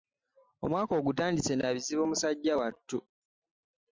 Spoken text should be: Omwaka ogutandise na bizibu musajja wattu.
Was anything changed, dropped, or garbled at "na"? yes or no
no